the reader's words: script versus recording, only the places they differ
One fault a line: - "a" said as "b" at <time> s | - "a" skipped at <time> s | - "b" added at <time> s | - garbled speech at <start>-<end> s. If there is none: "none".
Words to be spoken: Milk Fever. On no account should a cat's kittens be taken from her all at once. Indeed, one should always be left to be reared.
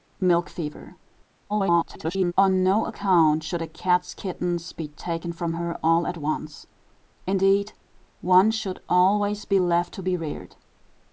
- garbled speech at 1.5-2.3 s